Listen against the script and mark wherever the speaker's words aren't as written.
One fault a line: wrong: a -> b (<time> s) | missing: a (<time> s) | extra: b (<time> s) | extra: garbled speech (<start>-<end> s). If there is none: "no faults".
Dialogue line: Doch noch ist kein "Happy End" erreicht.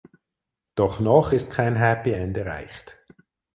no faults